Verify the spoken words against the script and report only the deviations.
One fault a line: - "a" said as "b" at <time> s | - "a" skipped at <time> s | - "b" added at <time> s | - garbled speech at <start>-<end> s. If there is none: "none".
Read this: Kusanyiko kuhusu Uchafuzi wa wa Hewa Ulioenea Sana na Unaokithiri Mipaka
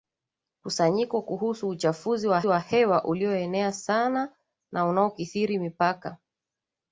none